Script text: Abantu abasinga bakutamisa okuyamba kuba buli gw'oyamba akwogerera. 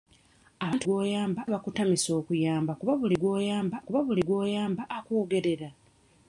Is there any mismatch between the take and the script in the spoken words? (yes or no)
yes